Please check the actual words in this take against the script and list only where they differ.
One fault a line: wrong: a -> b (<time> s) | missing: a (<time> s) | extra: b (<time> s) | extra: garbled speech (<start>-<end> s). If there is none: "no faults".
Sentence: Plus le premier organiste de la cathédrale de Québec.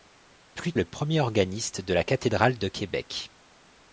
no faults